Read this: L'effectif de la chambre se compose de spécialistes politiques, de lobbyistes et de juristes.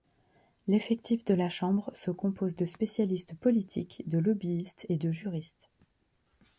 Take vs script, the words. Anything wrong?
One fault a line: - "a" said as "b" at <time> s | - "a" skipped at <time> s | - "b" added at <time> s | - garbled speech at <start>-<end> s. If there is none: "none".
none